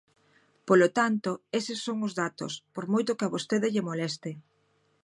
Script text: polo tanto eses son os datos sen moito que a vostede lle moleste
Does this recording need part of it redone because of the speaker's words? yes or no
yes